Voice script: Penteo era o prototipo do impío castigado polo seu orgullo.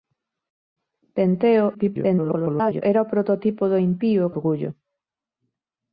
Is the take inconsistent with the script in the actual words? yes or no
yes